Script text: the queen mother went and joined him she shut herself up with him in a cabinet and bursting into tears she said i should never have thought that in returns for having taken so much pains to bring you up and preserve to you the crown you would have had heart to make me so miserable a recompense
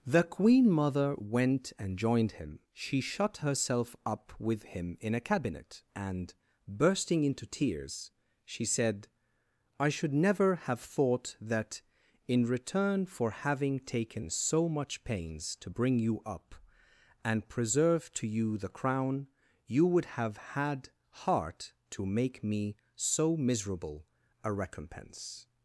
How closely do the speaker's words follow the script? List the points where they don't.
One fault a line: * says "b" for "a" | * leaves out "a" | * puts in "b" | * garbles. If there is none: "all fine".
* says "return" for "returns"